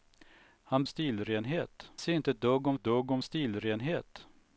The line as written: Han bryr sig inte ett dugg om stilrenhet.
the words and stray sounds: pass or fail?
fail